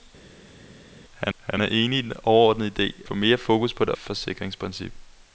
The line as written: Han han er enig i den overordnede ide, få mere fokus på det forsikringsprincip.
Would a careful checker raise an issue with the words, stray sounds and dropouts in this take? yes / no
no